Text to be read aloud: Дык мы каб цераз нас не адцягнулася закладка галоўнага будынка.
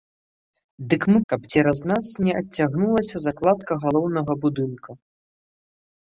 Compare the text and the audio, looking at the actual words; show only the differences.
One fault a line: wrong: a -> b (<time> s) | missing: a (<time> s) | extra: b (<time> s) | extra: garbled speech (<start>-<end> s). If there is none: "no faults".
no faults